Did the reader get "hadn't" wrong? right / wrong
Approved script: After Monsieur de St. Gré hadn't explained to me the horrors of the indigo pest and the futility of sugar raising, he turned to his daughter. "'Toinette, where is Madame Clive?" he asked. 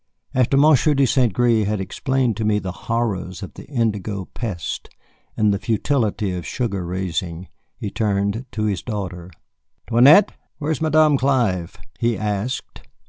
wrong